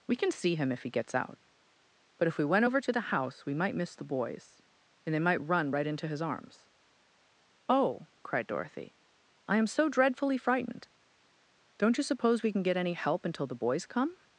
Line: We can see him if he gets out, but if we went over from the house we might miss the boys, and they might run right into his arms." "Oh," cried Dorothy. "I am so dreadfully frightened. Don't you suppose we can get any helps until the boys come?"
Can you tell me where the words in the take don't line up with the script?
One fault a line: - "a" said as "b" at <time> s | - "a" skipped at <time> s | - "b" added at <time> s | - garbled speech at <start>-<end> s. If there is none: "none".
- "from" said as "to" at 2.8 s
- "helps" said as "help" at 12.9 s